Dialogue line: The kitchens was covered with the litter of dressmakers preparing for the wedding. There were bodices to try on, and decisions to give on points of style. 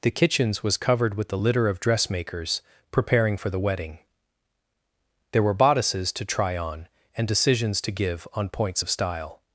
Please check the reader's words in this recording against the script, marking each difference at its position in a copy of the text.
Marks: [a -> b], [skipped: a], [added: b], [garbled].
The kitchens was covered with the litter of dressmakers preparing for the wedding. There were bodices to try on, and decisions to give on points of style.